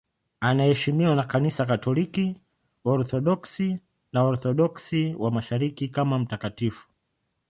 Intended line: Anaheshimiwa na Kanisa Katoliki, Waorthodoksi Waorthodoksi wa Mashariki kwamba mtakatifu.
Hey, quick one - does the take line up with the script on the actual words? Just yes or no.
no